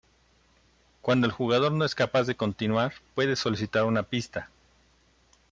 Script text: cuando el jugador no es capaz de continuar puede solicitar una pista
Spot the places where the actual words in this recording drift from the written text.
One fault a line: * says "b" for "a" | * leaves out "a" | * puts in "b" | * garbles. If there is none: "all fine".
all fine